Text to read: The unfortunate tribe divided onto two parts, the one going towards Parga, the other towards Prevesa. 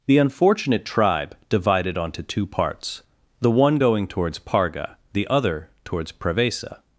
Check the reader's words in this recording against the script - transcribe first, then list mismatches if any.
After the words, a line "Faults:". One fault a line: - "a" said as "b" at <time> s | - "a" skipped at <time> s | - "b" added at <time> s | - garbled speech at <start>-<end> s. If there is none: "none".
The unfortunate tribe divided onto two parts, the one going towards Parga, the other towards Prevesa.
Faults:
none